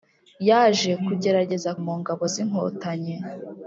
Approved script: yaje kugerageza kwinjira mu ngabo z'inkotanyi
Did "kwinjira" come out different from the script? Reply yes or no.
yes